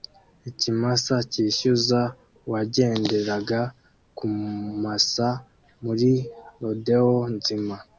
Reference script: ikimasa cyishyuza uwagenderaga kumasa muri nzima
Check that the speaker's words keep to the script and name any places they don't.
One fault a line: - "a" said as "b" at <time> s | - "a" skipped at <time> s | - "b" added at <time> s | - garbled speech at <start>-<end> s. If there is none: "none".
- "rodeo" added at 6.6 s